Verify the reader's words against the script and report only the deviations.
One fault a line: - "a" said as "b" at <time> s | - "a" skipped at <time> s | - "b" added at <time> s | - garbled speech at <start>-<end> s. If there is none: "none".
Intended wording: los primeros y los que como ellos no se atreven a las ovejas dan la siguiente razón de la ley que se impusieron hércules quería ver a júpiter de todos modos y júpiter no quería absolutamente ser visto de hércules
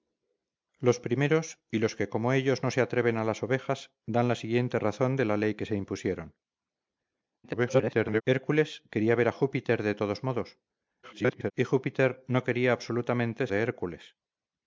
- garbled speech at 7.4-8.2 s
- garbled speech at 11.0-11.5 s
- "ser visto" skipped at 13.5 s